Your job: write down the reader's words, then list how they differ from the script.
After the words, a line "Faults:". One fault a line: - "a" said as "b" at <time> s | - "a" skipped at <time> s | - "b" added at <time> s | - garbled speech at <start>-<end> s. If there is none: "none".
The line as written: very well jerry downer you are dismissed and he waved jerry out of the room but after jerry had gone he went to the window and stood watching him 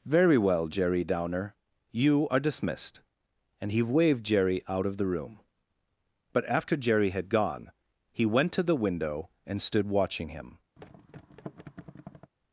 very well jerry downer you are dismissed and he waved jerry out of the room but after jerry had gone he went to the window and stood watching him
Faults:
none